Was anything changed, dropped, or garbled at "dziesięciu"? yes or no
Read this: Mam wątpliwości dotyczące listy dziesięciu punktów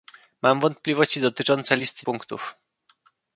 yes